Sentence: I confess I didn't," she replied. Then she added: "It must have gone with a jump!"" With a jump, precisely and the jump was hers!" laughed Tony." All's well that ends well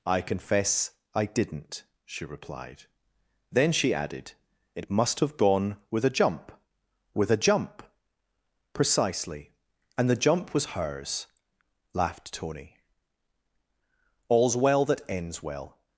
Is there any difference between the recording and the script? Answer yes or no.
no